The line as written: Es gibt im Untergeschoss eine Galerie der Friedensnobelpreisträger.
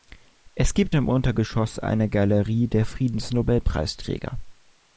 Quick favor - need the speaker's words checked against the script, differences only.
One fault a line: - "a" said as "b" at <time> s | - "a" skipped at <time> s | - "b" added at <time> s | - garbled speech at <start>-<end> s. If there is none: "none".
none